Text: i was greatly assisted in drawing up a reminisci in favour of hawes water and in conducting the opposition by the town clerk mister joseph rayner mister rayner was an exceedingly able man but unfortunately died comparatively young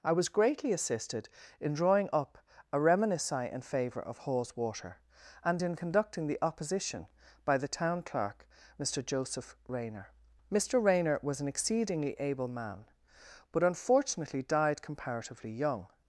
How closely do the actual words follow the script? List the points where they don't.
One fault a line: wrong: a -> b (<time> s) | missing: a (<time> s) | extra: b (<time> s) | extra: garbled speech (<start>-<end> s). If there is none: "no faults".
no faults